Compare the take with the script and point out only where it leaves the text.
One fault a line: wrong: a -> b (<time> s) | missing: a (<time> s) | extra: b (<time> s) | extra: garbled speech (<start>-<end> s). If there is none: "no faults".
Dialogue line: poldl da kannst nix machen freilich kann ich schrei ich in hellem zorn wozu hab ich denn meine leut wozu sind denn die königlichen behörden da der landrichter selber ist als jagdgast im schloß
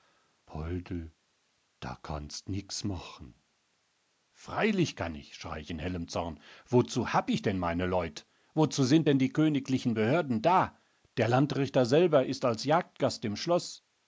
no faults